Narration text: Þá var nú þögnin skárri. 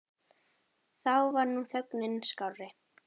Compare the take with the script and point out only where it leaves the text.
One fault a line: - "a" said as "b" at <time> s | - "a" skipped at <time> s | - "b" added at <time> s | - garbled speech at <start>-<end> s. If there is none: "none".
none